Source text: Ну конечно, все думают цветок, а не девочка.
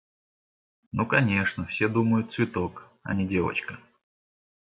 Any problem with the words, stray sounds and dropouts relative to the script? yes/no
no